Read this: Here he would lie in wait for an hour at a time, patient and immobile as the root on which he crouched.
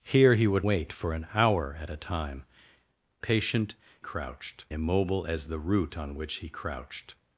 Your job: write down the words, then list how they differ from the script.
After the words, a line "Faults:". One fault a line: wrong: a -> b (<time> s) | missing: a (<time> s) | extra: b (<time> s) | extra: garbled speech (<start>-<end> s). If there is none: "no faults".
Here he would wait for an hour at a time, patient crouched immobile as the root on which he crouched.
Faults:
missing: lie in (0.7 s)
wrong: and -> crouched (4.0 s)